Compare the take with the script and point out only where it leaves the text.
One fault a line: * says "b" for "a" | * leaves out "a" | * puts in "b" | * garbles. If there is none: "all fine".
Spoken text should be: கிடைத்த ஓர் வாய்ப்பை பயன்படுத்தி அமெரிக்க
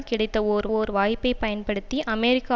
* puts in "ஓர்"